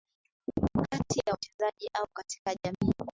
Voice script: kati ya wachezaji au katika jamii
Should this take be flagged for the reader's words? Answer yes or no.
no